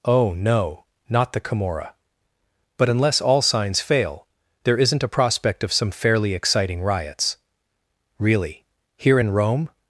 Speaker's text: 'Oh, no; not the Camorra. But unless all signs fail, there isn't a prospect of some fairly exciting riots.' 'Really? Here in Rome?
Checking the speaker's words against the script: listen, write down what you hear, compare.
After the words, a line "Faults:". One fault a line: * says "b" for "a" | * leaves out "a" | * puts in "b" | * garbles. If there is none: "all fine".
'Oh, no; not the Camorra. But unless all signs fail, there isn't a prospect of some fairly exciting riots.' 'Really? Here in Rome?
Faults:
all fine